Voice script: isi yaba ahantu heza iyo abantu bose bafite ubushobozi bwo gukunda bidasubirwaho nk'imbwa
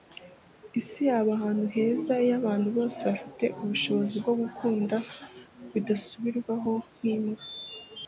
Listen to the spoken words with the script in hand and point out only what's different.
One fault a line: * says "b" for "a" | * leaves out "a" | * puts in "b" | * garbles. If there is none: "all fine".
all fine